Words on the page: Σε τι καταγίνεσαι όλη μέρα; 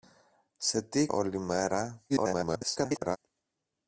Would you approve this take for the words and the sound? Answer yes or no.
no